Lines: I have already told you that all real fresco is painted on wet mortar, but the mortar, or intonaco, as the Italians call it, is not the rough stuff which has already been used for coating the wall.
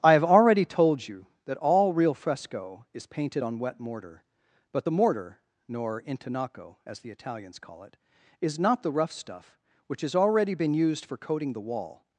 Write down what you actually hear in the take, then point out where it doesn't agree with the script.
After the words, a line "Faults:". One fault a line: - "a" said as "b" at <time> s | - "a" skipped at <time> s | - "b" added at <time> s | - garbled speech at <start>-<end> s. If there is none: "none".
I have already told you that all real fresco is painted on wet mortar, but the mortar, nor intonaco, as the Italians call it, is not the rough stuff which has already been used for coating the wall.
Faults:
- "or" said as "nor" at 5.7 s